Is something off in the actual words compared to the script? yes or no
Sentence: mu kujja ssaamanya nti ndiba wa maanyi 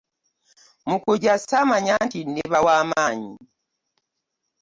no